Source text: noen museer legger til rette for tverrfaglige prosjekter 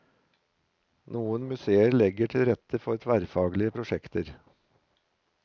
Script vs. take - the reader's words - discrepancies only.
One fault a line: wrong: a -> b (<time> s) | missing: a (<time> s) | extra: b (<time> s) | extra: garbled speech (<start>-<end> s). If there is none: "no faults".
no faults